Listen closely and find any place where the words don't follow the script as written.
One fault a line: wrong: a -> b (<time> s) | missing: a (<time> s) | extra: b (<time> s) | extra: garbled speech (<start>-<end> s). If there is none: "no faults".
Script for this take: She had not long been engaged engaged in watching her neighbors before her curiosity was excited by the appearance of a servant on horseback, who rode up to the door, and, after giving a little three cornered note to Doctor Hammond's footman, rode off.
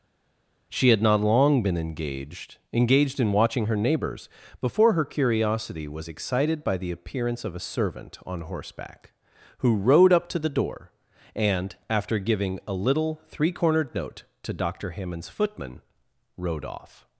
no faults